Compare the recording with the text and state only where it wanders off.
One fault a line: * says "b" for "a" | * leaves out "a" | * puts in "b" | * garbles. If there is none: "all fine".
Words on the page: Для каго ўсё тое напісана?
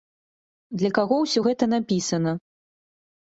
* says "гэта" for "тое"